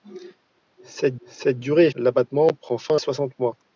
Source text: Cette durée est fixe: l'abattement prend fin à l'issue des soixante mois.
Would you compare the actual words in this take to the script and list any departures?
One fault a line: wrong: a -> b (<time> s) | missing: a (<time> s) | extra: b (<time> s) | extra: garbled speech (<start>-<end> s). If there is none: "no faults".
extra: cette (1.3 s)
missing: fixe (1.9 s)
missing: à l'issue des (3.0 s)